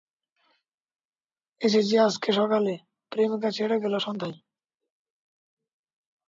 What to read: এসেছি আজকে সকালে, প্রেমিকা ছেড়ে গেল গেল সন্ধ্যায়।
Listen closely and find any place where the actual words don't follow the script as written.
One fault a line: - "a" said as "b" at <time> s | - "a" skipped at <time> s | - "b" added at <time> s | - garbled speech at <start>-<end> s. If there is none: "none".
- "গেল" skipped at 3.9 s